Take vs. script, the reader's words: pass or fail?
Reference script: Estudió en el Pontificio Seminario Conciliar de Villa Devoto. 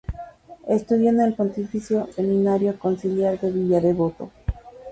pass